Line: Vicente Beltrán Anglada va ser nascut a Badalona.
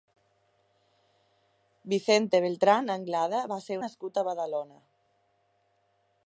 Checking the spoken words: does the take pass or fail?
pass